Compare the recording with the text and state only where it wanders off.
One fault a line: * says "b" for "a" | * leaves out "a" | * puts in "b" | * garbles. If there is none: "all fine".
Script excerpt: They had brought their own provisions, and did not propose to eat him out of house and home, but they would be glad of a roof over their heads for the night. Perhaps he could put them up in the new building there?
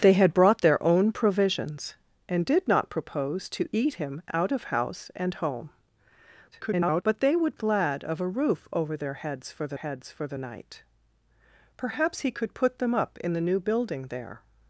* garbles
* leaves out "be"
* puts in "heads for the"